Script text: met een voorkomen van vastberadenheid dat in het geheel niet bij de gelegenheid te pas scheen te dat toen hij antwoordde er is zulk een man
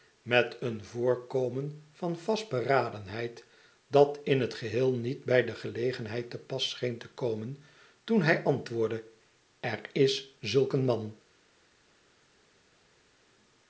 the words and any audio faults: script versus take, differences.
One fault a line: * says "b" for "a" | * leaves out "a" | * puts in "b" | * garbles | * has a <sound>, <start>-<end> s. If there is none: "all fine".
* says "komen" for "dat"